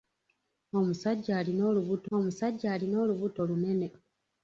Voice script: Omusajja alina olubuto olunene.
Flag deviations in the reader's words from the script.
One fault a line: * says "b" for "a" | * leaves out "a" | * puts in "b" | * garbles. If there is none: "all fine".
* puts in "omusajja alina olubuto"